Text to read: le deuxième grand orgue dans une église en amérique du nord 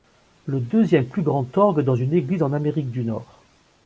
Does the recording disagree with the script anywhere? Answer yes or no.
yes